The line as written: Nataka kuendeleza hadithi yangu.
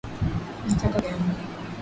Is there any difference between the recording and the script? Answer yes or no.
yes